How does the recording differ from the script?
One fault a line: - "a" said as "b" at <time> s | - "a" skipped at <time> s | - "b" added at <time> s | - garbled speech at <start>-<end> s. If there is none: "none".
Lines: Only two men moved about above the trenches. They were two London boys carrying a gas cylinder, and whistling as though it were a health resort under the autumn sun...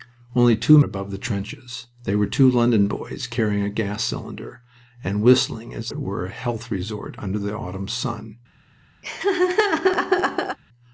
- "men moved about" skipped at 0.8 s
- "though" skipped at 5.9 s